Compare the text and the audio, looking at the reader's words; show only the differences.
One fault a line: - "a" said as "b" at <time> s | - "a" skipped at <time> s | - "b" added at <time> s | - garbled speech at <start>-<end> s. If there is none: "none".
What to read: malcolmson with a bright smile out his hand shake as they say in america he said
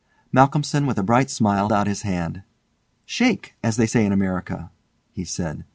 none